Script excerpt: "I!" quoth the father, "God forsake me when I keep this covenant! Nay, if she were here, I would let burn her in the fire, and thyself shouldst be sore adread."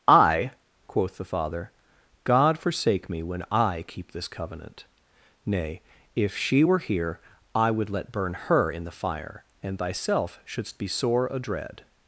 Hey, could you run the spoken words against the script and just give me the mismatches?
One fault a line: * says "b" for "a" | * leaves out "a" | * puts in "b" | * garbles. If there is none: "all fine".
all fine